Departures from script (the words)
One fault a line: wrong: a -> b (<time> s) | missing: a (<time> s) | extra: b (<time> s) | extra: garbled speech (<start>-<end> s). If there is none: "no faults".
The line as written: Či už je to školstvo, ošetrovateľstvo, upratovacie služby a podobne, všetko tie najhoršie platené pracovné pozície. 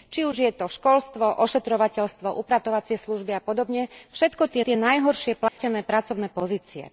extra: tie (4.6 s)